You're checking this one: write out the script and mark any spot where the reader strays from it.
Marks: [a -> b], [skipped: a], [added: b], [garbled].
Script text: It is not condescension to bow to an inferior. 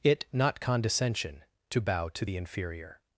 It [skipped: is] not condescension to bow to [an -> the] inferior.